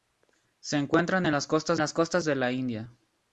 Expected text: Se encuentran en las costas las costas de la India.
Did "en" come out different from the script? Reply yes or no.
no